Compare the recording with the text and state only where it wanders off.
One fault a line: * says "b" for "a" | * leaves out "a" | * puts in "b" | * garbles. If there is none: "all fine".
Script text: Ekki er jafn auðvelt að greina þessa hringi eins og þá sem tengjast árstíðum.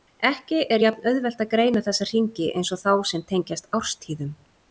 all fine